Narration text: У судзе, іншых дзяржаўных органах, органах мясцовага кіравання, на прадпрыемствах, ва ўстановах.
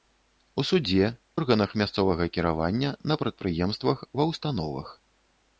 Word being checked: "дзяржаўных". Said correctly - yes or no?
no